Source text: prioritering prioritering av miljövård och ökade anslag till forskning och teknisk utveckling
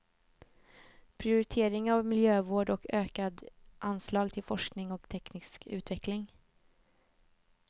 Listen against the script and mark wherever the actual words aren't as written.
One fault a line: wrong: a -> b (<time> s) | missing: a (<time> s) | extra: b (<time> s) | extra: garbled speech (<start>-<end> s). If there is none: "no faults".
missing: prioritering (1.9 s)